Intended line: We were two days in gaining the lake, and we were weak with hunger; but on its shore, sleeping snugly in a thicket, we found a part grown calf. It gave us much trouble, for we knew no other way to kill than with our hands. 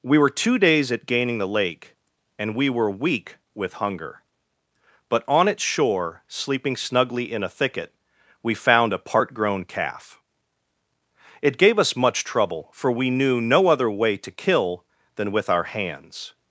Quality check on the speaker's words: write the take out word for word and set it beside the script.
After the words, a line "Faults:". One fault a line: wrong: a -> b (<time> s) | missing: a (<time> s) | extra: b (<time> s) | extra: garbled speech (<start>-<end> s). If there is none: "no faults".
We were two days at gaining the lake, and we were weak with hunger; but on its shore, sleeping snugly in a thicket, we found a part grown calf. It gave us much trouble, for we knew no other way to kill than with our hands.
Faults:
wrong: in -> at (0.9 s)